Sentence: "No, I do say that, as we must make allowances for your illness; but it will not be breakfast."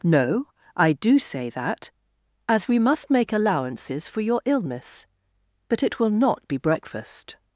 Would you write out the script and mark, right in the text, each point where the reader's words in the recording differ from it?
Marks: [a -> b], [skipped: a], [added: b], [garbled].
"No, I do say that, as we must make allowances for your illness; but it will not be breakfast."